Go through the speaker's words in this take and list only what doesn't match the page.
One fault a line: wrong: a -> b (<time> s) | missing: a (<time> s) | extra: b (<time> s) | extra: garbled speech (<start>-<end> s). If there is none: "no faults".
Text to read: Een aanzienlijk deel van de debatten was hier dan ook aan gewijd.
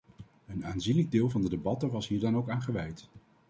no faults